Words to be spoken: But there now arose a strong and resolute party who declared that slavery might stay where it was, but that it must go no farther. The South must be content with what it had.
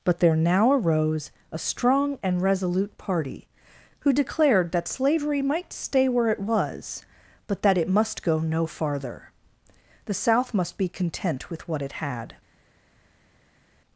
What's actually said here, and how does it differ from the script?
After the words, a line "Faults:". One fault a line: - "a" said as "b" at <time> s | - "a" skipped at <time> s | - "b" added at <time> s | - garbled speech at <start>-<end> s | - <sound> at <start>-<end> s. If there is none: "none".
But there now arose a strong and resolute party who declared that slavery might stay where it was, but that it must go no farther. The South must be content with what it had.
Faults:
none